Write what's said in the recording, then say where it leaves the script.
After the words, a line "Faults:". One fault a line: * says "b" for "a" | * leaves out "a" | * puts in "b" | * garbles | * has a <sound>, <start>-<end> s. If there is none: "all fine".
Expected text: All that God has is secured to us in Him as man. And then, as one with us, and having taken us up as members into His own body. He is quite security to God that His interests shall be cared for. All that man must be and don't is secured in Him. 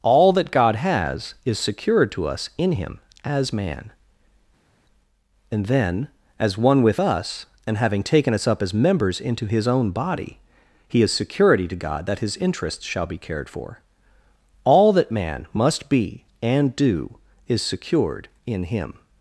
All that God has is secured to us in Him as man. And then, as one with us, and having taken us up as members into His own body. He is security to God that His interests shall be cared for. All that man must be and do is secured in Him.
Faults:
* leaves out "quite"
* says "do" for "don't"